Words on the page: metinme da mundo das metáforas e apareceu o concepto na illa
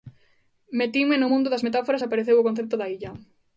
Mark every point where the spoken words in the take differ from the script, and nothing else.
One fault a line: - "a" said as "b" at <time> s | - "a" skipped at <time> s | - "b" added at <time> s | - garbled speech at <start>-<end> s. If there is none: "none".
- "da" said as "no" at 1.2 s
- "na" said as "da" at 2.8 s